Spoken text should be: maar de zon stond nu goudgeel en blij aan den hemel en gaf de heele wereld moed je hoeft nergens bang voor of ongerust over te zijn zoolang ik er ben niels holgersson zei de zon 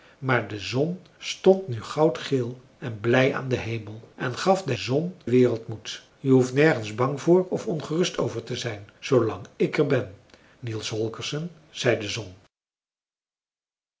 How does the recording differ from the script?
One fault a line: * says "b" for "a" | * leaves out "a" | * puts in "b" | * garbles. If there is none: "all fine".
* says "zon" for "heele"